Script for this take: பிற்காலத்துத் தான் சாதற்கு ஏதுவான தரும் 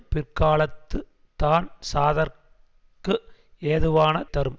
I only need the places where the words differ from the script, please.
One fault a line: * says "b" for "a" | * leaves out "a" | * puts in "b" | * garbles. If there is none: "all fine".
all fine